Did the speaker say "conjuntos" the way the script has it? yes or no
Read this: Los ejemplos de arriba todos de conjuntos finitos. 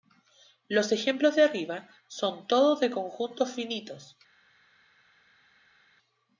yes